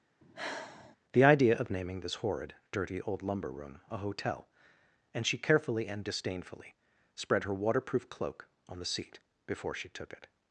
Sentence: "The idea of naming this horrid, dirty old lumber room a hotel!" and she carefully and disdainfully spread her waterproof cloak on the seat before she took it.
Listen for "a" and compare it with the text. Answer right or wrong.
right